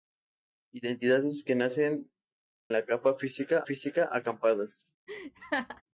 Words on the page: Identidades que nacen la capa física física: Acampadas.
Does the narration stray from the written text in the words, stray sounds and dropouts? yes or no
yes